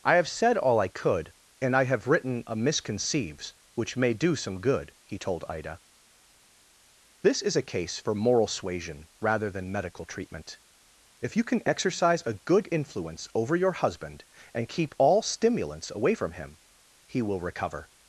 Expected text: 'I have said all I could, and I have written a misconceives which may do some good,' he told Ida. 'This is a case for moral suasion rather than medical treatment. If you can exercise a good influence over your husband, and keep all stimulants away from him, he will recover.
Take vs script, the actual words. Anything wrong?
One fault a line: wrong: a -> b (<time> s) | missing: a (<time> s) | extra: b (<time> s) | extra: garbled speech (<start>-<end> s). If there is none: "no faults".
no faults